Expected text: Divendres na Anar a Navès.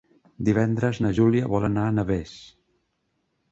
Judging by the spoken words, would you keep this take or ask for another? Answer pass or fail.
fail